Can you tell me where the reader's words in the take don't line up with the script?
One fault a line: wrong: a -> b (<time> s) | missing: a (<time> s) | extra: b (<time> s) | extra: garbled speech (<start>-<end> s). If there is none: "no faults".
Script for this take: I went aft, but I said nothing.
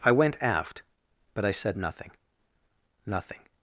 extra: nothing (3.1 s)